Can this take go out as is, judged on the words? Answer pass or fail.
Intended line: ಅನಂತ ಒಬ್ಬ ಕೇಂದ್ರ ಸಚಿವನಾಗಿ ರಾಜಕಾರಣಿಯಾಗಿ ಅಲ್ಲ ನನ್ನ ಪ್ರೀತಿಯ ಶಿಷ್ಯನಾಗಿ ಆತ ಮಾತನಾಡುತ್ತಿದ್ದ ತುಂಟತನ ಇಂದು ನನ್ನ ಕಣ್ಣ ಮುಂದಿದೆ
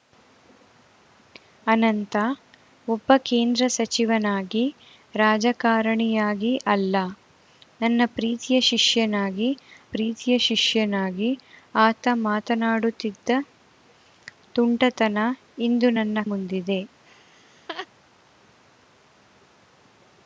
fail